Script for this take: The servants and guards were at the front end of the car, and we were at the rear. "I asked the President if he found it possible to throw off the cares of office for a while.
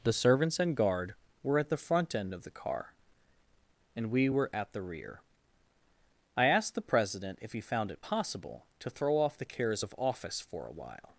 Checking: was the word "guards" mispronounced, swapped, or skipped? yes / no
yes